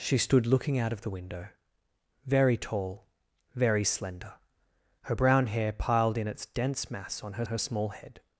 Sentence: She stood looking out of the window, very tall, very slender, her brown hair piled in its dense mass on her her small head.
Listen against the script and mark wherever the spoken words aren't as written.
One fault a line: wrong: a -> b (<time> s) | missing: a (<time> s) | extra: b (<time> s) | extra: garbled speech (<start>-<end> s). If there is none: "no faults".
no faults